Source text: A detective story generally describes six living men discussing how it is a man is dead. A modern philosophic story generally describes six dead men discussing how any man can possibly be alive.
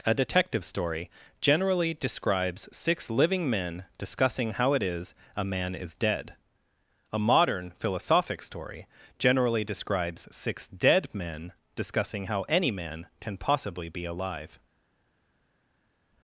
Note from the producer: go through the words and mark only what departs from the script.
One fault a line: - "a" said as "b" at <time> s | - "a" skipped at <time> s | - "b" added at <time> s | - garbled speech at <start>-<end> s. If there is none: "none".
none